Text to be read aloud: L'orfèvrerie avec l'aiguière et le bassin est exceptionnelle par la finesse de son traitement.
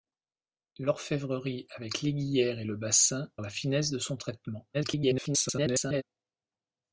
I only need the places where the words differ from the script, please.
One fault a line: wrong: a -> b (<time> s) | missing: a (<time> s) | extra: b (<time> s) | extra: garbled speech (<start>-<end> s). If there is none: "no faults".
missing: est exceptionnelle par (3.3 s)
extra: garbled speech (4.7-6.0 s)